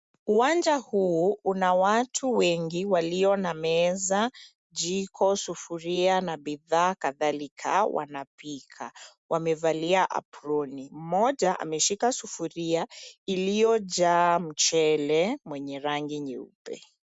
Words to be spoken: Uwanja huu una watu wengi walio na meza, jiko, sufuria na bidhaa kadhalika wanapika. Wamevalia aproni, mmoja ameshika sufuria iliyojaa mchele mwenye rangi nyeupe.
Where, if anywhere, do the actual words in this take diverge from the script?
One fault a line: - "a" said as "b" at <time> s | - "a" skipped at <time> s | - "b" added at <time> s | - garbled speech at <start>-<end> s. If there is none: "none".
none